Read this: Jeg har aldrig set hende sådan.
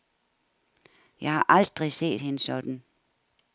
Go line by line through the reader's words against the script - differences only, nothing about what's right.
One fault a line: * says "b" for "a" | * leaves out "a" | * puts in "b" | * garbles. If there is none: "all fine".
all fine